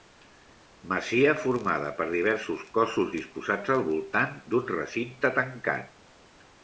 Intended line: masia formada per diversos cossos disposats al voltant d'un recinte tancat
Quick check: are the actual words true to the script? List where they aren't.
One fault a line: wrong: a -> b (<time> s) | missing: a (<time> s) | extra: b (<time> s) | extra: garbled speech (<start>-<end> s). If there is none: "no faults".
no faults